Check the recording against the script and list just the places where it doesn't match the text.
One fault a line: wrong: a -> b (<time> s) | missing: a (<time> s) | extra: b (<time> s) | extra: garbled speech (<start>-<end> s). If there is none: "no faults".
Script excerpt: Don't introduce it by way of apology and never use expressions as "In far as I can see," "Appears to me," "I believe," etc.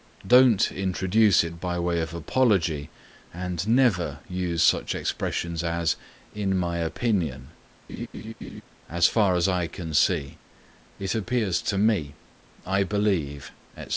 extra: such (4.6 s)
extra: my opinion As (6.6 s)
extra: It (11.0 s)